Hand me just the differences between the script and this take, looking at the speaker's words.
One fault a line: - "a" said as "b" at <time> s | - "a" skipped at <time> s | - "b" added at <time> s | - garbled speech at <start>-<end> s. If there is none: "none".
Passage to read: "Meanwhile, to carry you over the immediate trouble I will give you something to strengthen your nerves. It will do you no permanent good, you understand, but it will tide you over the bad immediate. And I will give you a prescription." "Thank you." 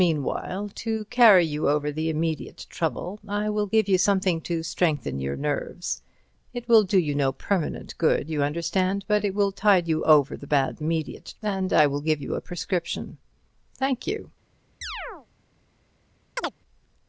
none